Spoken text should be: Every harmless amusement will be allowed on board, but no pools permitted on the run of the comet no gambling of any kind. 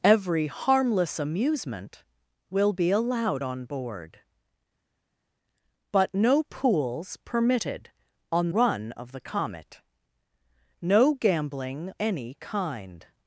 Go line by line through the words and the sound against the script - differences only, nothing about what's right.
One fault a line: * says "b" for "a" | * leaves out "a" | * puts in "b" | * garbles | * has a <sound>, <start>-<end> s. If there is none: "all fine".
* leaves out "the"
* leaves out "of"